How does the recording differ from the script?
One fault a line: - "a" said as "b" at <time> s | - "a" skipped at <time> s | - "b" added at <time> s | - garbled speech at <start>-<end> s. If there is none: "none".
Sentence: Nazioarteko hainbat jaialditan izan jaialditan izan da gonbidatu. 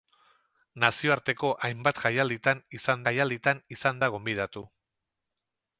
none